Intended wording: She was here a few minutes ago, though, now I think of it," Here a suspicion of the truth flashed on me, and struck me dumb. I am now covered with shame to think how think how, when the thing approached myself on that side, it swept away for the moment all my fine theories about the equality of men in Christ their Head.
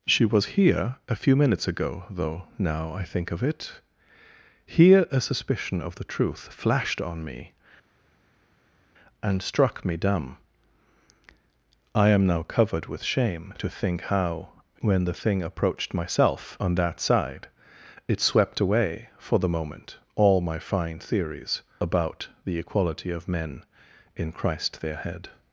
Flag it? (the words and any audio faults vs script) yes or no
yes